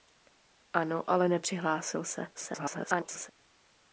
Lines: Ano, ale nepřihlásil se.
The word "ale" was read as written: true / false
true